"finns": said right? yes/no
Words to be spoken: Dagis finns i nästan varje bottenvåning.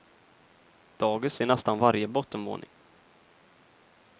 no